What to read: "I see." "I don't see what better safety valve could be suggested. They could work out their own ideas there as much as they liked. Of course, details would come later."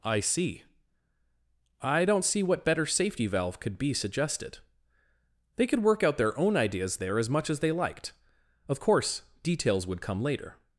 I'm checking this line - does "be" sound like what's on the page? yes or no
yes